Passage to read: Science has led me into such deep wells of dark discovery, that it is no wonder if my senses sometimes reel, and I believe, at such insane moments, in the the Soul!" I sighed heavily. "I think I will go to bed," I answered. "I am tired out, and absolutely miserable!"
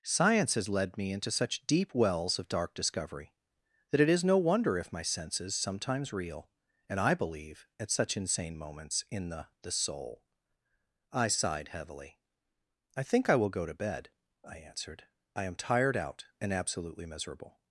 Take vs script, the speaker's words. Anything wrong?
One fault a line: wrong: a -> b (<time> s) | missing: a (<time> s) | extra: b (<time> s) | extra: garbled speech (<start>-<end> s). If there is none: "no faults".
no faults